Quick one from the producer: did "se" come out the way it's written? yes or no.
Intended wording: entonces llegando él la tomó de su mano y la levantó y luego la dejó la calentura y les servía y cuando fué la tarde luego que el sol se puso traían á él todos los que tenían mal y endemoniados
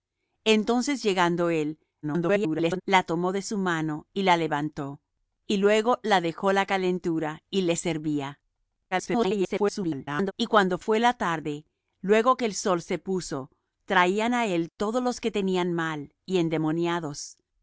yes